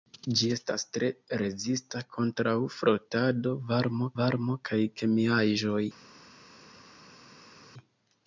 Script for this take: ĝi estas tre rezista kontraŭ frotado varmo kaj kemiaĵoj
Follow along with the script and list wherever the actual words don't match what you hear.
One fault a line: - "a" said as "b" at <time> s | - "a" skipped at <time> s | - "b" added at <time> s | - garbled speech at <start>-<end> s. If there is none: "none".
- "varmo" added at 4.2 s